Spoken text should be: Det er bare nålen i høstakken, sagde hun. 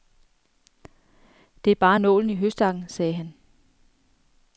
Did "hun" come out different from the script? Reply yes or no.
yes